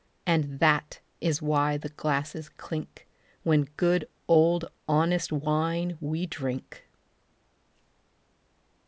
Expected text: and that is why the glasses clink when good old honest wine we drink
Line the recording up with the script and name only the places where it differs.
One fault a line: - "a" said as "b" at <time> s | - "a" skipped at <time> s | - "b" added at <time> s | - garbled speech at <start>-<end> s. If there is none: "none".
none